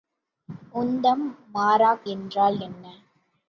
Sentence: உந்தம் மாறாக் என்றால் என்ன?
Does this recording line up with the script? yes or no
yes